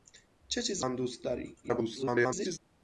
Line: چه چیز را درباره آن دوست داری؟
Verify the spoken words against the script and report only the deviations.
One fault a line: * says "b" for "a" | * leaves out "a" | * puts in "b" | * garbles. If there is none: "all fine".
* leaves out "را درباره"
* garbles